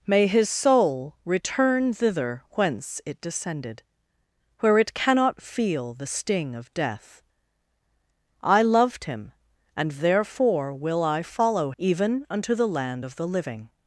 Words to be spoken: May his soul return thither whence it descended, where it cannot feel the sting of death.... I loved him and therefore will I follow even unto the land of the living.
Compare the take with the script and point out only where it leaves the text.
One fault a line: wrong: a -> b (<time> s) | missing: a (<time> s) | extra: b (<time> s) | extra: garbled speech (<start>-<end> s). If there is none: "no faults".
no faults